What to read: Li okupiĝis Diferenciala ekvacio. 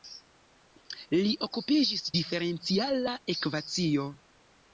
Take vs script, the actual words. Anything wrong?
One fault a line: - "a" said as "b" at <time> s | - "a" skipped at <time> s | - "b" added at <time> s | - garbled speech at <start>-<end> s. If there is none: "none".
none